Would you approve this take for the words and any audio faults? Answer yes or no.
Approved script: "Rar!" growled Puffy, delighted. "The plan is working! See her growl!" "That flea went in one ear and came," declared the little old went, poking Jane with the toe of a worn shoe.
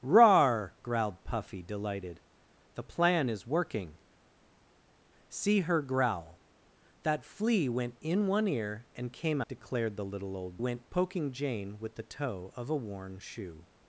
yes